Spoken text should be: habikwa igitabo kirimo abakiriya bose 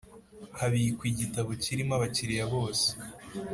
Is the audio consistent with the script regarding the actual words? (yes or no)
yes